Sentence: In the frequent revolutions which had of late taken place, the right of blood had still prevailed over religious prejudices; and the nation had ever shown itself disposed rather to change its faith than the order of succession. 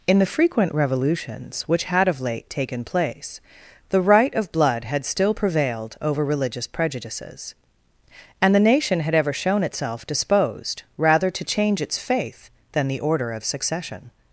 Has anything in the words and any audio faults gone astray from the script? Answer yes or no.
no